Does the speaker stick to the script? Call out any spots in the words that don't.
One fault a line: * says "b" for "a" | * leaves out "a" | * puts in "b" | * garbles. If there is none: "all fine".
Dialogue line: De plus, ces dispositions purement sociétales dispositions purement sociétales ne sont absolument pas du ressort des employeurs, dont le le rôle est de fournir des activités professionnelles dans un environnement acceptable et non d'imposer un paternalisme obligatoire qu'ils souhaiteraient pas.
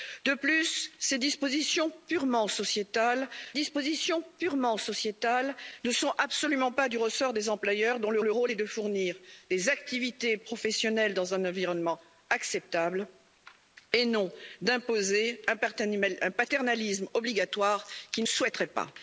all fine